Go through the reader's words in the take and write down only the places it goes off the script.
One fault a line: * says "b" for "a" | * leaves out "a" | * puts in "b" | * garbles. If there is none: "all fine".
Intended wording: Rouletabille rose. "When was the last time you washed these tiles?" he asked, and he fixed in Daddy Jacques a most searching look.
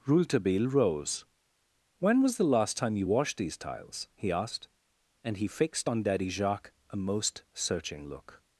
* says "on" for "in"